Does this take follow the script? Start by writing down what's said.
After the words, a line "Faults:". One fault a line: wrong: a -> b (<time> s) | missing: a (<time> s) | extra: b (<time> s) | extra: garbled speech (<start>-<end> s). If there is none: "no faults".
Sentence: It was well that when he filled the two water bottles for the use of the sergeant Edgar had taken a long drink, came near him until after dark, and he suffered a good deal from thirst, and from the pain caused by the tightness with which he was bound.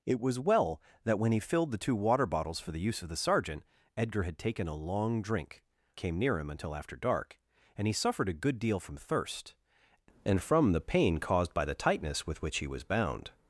It was well that when he filled the two water bottles for the use of the sergeant Edgar had taken a long drink, came near him until after dark, and he suffered a good deal from thirst, and from the pain caused by the tightness with which he was bound.
Faults:
no faults